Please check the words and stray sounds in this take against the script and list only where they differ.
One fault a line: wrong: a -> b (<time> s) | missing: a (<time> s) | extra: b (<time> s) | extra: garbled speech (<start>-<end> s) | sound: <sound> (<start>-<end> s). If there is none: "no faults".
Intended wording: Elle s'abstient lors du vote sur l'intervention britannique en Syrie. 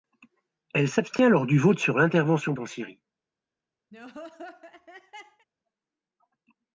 missing: britannique (2.5 s)
sound: laugh (3.9-5.5 s)